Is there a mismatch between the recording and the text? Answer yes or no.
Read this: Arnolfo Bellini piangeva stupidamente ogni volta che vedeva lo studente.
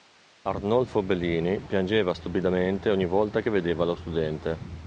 no